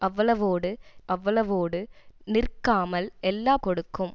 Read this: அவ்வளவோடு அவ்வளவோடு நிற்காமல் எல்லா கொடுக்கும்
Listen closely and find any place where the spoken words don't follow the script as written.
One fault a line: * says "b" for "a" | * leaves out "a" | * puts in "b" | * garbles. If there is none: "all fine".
all fine